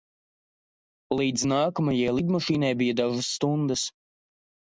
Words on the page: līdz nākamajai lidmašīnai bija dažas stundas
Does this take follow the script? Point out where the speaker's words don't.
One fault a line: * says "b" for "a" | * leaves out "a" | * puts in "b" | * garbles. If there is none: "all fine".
all fine